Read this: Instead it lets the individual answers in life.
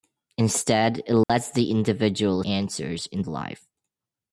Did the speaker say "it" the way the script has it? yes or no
yes